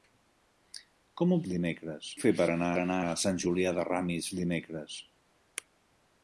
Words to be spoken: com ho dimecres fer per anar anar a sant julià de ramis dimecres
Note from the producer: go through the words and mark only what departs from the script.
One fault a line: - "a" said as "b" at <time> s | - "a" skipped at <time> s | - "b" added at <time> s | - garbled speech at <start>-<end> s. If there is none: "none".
none